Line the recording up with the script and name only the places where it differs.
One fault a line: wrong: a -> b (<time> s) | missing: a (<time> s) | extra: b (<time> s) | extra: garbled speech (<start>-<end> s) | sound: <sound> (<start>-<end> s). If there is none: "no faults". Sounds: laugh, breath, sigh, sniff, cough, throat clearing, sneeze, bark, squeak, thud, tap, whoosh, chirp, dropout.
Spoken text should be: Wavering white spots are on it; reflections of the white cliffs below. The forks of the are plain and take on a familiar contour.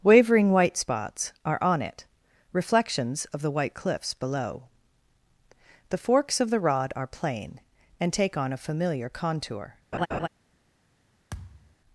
extra: rod (6.6 s)
sound: laugh (9.9-10.3 s)
sound: thud (11.3-11.8 s)